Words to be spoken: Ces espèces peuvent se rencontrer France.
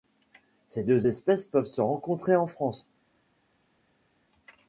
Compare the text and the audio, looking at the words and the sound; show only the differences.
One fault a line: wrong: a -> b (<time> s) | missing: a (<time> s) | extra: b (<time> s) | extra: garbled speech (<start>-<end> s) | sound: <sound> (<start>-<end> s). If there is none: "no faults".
extra: deux (0.8 s)
extra: en (2.3 s)